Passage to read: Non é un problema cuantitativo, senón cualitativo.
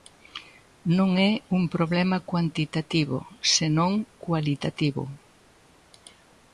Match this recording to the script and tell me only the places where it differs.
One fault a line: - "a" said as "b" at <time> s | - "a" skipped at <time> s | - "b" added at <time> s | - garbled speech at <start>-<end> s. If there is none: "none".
none